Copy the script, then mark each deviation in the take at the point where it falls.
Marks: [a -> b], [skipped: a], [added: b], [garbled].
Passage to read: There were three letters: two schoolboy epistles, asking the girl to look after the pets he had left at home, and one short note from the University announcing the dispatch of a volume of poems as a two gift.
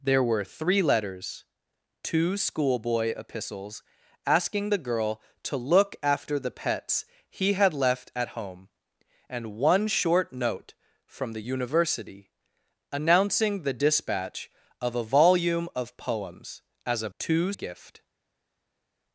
There were three letters: two schoolboy epistles, asking the girl to look after the pets he had left at home, and one short note from the University announcing the dispatch of a volume of poems as a two gift.